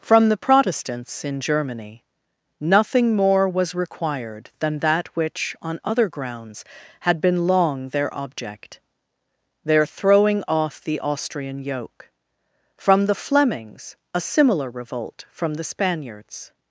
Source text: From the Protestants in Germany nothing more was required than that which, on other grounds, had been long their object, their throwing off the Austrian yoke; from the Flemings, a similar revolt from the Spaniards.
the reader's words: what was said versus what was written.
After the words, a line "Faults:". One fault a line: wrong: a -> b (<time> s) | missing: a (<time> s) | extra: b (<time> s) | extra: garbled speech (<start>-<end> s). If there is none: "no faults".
From the Protestants in Germany nothing more was required than that which, on other grounds, had been long their object, their throwing off the Austrian yoke; from the Flemings, a similar revolt from the Spaniards.
Faults:
no faults